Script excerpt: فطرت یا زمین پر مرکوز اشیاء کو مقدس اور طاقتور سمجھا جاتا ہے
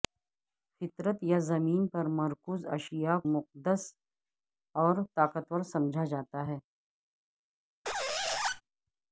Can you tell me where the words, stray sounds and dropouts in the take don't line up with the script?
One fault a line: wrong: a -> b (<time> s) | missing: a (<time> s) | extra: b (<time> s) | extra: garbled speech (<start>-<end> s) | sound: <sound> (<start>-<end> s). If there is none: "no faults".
missing: کو (3.2 s)
sound: squeak (7.8-8.6 s)